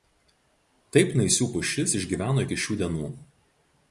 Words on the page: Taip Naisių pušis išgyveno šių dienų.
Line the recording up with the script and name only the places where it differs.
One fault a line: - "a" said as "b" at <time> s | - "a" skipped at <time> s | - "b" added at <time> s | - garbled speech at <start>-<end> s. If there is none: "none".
- "iki" added at 2.4 s